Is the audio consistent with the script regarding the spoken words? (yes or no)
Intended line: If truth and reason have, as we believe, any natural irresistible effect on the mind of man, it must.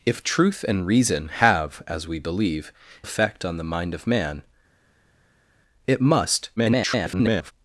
no